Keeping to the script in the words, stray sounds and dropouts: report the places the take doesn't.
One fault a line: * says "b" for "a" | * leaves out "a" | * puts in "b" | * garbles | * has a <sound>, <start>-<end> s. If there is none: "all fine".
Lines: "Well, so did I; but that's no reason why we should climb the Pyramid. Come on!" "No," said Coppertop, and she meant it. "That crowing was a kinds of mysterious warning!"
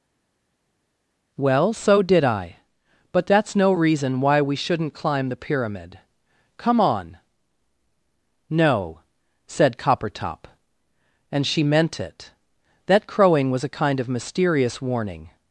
* says "shouldn't" for "should"
* says "kind" for "kinds"